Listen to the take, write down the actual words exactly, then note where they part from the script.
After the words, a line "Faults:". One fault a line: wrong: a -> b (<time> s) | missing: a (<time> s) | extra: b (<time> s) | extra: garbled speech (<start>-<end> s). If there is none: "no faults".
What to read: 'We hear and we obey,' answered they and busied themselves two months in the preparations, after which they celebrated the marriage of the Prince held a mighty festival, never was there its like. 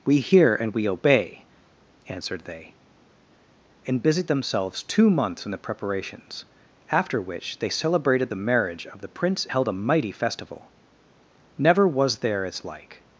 'We hear and we obey,' answered they and busied themselves two months in the preparations, after which they celebrated the marriage of the Prince held a mighty festival, never was there its like.
Faults:
no faults